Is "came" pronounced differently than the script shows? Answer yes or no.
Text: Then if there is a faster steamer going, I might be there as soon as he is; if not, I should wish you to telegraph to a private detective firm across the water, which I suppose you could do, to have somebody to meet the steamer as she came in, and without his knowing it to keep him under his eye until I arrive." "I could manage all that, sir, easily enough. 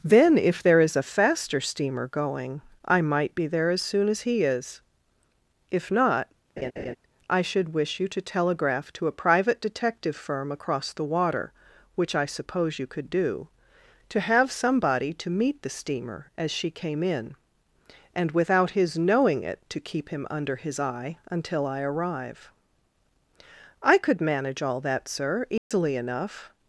no